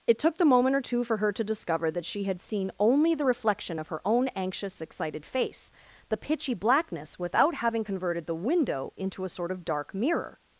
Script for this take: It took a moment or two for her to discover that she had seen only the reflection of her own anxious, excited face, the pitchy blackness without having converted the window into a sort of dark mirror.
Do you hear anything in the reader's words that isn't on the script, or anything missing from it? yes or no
yes